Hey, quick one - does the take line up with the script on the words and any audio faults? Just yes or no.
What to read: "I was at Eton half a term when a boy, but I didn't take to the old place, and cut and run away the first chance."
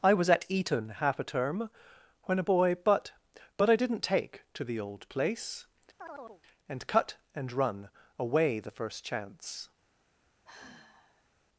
no